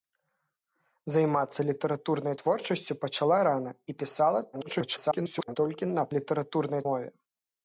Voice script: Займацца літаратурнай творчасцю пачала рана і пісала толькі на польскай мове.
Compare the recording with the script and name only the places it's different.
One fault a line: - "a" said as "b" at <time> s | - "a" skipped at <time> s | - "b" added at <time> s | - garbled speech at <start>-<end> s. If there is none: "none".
- garbled speech at 4.5-5.6 s
- "польскай" said as "літаратурнай" at 6.2 s